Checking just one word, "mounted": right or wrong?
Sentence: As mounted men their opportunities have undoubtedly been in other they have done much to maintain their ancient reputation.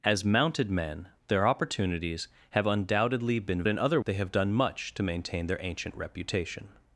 right